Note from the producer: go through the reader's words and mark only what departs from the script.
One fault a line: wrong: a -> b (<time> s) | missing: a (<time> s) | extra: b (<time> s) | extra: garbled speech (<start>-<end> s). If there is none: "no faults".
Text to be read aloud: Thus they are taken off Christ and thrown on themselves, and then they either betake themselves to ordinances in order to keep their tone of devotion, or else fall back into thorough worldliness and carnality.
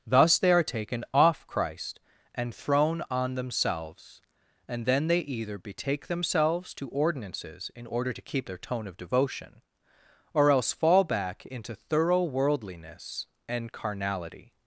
no faults